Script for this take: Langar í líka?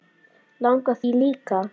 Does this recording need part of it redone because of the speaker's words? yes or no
no